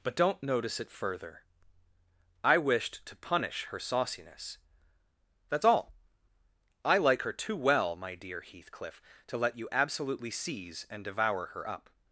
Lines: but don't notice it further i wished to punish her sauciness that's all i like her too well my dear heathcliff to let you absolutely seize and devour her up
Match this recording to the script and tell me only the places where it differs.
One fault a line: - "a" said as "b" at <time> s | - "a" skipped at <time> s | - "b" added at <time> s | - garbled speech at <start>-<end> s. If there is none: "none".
none